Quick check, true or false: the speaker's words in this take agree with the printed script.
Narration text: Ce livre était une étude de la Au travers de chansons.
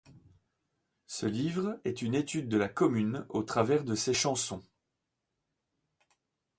false